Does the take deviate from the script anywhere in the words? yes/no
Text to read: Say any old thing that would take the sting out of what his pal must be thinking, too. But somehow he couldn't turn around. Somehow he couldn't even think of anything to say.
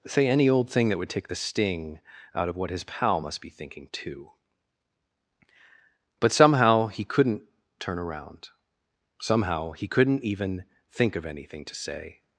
no